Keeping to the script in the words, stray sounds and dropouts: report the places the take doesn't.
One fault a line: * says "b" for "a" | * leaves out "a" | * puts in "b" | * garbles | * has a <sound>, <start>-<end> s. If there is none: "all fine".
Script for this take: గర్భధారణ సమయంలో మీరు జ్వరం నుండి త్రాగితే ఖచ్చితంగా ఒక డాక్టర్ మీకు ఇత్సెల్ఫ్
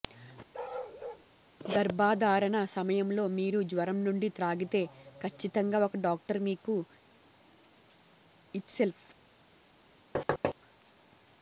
* has a bark, 0.5-1.3 s
* has a thud, 10.1-10.5 s